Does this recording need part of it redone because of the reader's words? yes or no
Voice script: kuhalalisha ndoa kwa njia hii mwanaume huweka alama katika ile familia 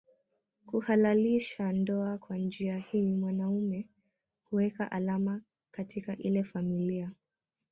no